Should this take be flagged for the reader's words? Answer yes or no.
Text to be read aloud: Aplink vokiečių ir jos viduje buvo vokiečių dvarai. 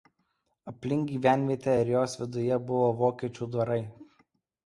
yes